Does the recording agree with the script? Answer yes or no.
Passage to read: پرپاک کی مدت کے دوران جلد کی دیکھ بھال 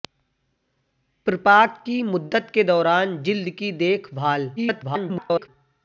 no